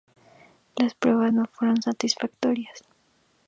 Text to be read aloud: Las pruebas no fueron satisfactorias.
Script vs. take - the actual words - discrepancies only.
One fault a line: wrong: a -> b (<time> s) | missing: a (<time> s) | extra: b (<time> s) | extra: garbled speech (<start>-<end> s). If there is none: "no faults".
no faults